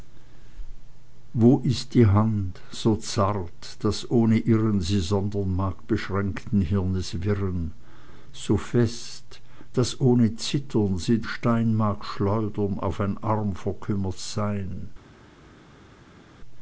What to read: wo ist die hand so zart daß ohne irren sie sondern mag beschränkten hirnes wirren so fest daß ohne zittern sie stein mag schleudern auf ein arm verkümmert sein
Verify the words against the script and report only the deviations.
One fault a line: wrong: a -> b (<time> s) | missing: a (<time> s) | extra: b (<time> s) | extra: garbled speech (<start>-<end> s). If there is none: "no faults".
no faults